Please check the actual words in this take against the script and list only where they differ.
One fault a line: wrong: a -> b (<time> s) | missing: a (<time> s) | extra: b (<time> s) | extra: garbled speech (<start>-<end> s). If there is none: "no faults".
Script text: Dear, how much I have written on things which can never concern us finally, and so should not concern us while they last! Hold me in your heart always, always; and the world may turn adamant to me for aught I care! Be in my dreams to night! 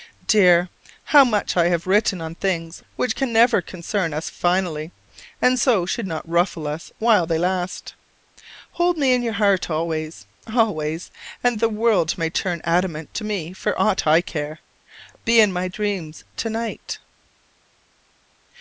wrong: concern -> ruffle (6.3 s)